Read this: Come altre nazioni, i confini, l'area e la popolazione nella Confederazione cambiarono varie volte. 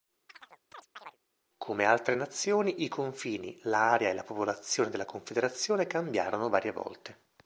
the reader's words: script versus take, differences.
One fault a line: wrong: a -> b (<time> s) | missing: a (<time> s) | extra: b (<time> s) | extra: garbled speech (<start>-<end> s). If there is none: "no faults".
wrong: nella -> della (4.9 s)